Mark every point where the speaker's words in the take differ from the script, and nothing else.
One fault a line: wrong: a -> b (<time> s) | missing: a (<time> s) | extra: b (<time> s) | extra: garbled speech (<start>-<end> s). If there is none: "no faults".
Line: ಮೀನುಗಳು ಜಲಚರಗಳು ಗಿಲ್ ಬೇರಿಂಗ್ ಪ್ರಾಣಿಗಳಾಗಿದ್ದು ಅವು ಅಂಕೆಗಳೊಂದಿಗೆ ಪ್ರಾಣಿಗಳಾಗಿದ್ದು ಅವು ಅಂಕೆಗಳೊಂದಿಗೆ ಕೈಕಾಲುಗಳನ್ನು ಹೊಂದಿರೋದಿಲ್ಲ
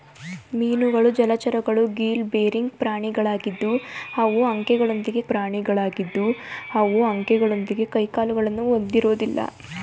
no faults